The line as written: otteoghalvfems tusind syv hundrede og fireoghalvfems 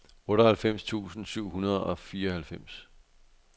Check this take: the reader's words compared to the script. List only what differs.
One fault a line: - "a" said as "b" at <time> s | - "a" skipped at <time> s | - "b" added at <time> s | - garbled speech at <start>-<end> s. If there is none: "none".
none